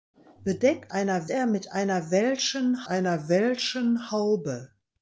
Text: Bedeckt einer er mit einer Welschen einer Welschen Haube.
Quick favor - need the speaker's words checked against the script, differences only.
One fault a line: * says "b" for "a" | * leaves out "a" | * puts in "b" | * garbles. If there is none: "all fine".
all fine